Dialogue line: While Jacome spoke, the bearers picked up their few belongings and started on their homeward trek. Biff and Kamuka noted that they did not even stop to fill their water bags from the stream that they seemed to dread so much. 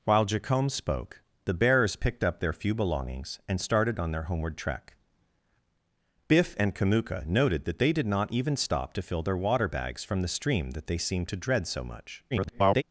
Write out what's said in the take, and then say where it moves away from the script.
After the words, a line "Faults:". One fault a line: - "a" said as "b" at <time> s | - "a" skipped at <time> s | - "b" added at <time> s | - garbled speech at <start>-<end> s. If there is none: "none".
While Jacome spoke, the bearers picked up their few belongings and started on their homeward trek. Biff and Kamuka noted that they did not even stop to fill their water bags from the stream that they seemed to dread so much. [garbled]
Faults:
- garbled speech at 12.3-12.8 s